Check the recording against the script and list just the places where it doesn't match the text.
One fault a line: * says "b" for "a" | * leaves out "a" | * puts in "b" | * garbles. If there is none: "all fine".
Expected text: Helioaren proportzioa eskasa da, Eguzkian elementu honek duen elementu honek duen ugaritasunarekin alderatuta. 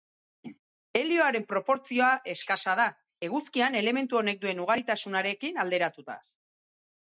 * leaves out "elementu honek duen"